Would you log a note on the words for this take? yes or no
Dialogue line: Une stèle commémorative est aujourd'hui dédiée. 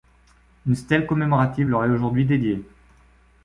yes